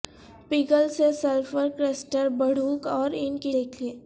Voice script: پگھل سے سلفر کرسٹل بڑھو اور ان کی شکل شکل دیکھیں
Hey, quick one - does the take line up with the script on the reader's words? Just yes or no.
no